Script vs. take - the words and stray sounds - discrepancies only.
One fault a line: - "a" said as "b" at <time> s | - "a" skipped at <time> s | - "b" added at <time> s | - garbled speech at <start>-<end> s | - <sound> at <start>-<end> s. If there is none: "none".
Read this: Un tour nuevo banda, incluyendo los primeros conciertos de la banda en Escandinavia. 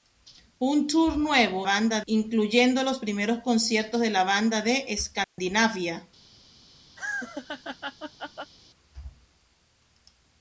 - dropout at 5.2-5.4 s
- laugh at 7.0-8.5 s